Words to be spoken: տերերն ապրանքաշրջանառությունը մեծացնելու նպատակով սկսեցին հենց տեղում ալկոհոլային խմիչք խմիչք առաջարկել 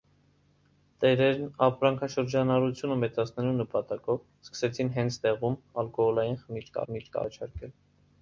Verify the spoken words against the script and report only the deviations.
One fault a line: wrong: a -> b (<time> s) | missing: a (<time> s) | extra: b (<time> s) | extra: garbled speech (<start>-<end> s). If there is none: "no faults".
no faults